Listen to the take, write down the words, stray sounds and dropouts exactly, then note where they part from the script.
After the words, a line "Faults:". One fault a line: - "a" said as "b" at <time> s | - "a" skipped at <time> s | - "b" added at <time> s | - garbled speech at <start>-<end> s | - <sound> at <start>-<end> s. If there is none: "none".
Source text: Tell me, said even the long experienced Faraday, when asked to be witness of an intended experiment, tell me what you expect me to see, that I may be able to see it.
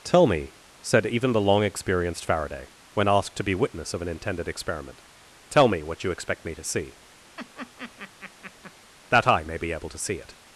Tell me, said even the long experienced Faraday, when asked to be witness of an intended experiment, tell me what you expect me to see, that I may be able to see it.
Faults:
- laugh at 7.4-8.7 s